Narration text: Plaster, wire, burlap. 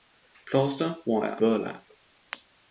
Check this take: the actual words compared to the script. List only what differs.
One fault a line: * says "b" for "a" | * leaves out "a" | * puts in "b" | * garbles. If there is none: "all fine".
all fine